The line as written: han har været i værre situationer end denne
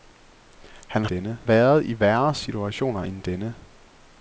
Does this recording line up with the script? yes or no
no